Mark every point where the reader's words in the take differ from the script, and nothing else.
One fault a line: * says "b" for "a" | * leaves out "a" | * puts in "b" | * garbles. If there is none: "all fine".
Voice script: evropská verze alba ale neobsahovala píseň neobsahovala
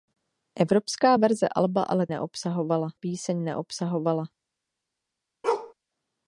all fine